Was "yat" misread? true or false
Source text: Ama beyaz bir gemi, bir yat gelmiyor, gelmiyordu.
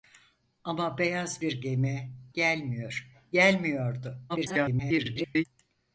true